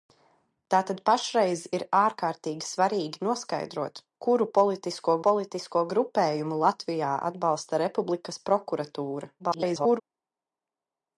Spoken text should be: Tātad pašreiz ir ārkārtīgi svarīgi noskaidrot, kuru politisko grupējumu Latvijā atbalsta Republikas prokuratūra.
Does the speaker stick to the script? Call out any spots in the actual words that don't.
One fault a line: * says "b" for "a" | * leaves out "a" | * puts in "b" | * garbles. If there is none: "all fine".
* puts in "politisko"
* garbles